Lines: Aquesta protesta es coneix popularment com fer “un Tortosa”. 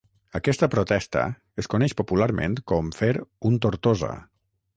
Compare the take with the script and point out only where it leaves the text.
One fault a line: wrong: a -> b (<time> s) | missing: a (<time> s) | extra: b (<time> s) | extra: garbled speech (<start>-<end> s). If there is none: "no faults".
no faults